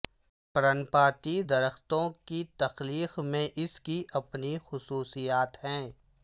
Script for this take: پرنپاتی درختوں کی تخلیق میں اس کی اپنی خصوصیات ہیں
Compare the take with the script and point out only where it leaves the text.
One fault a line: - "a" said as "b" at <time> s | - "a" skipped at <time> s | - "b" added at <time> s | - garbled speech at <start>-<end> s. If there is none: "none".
none